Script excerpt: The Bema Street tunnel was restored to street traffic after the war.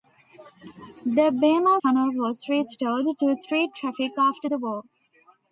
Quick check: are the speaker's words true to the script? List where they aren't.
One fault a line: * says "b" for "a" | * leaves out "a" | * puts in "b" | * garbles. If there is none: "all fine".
* leaves out "Street"